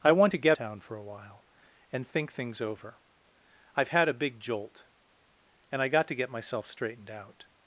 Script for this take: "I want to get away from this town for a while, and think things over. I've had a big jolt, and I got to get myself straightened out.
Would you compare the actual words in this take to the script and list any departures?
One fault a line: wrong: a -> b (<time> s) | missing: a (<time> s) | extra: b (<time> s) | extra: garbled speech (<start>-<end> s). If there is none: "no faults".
missing: away from this (0.6 s)